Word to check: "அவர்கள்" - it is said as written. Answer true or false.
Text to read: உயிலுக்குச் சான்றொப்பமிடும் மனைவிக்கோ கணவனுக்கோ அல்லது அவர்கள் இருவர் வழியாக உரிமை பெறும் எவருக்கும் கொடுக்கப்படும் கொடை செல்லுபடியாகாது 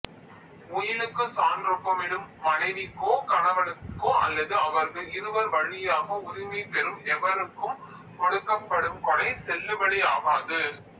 true